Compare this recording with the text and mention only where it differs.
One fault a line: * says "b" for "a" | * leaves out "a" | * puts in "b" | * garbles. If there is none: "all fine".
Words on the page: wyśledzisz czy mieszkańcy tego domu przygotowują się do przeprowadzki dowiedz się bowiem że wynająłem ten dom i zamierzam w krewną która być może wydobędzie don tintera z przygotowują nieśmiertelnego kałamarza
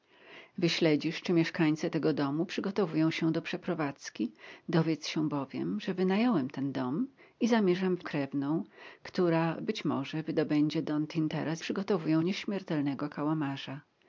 all fine